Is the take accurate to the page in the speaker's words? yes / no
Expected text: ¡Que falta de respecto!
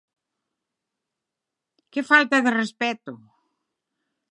yes